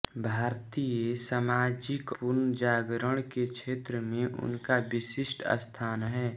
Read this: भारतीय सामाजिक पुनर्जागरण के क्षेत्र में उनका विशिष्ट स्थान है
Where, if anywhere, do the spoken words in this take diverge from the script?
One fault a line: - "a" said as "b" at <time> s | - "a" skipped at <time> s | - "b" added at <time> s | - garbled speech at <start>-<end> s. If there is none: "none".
none